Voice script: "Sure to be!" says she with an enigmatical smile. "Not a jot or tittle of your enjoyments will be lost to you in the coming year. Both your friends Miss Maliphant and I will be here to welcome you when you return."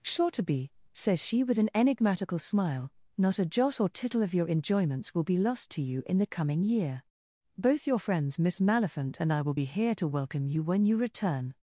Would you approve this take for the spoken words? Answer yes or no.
yes